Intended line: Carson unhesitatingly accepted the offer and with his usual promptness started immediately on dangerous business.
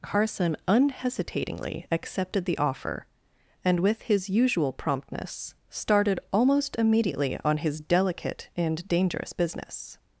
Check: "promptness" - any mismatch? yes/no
no